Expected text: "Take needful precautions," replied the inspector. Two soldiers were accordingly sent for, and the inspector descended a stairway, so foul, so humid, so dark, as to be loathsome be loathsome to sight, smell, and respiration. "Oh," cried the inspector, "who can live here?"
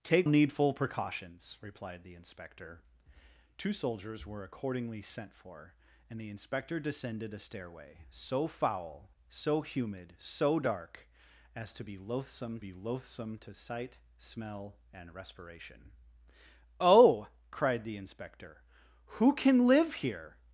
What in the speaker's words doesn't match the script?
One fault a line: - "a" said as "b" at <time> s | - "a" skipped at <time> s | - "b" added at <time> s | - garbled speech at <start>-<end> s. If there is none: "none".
none